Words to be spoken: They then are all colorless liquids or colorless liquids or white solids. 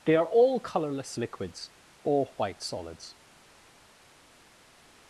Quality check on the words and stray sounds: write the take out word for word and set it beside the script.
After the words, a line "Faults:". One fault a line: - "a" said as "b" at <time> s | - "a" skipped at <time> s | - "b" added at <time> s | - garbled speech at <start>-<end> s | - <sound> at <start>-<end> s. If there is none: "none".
They are all colorless liquids or white solids.
Faults:
- "then" skipped at 0.1 s
- "colorless liquids or" skipped at 2.3 s